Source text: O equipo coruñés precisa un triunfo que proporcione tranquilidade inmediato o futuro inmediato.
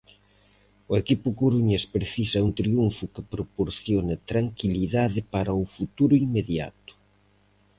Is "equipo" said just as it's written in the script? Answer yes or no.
yes